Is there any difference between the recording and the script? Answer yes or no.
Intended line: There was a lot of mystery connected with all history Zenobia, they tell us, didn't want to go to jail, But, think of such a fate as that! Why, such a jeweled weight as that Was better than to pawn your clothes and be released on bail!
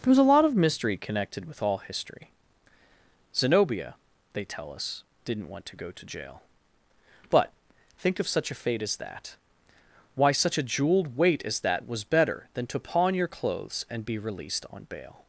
no